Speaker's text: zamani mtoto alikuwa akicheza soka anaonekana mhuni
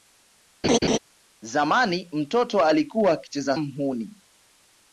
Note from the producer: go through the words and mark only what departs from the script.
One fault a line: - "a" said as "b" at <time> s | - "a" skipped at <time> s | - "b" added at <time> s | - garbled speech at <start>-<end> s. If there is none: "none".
- "soka anaonekana" skipped at 3.6 s